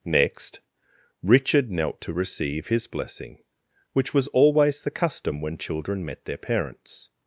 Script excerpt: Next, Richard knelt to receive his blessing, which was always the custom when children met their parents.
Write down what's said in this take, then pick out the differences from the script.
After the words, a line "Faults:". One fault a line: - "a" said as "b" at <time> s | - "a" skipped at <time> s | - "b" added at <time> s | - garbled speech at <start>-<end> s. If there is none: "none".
Next, Richard knelt to receive his blessing, which was always the custom when children met their parents.
Faults:
none